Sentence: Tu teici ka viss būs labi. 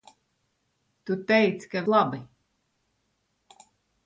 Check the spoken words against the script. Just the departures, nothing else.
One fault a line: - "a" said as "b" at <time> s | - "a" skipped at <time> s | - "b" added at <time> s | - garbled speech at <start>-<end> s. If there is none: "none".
- "viss būs" skipped at 1.8 s